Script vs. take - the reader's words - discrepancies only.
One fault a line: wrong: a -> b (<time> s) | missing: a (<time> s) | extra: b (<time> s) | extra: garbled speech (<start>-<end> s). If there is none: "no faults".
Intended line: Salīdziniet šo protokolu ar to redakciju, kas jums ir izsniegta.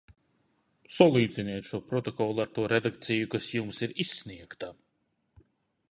no faults